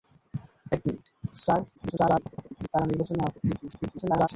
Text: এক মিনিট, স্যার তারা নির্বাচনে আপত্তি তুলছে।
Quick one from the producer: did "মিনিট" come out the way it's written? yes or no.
yes